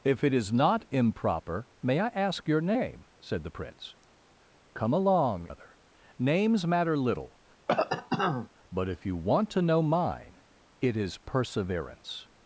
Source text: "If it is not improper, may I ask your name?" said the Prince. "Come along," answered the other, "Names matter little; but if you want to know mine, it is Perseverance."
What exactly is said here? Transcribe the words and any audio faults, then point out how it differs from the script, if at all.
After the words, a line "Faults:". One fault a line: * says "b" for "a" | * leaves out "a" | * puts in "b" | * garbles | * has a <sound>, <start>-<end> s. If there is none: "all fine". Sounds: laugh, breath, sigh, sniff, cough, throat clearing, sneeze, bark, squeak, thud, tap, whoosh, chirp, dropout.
"If it is not improper, may I ask your name?" said the Prince. "Come along," other, "Names matter little; but if you want to know mine, it is Perseverance."
Faults:
* leaves out "answered the"
* has a cough, 7.7-8.5 s